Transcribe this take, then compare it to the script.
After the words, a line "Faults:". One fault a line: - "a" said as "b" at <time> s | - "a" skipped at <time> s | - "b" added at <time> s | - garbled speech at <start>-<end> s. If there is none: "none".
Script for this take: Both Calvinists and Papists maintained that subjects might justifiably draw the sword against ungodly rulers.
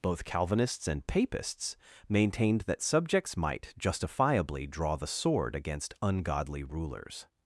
Both Calvinists and Papists maintained that subjects might justifiably draw the sword against ungodly rulers.
Faults:
none